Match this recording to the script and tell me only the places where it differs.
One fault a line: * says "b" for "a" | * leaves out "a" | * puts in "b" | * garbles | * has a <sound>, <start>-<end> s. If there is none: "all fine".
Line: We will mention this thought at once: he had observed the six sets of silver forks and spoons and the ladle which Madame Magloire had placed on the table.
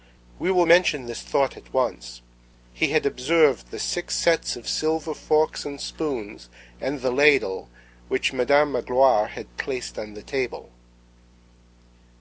all fine